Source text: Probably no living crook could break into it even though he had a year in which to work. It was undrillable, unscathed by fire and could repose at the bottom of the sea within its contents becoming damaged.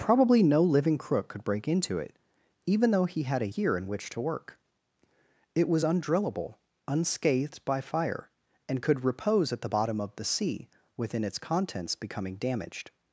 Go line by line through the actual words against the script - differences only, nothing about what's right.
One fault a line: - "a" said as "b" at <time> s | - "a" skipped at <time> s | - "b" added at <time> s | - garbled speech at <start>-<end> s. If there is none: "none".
none